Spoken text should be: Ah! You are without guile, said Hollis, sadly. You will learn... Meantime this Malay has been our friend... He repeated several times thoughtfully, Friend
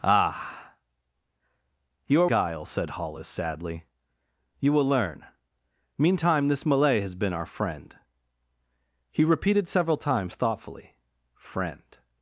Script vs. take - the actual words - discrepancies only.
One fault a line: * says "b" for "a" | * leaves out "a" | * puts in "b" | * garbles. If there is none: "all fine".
* leaves out "without"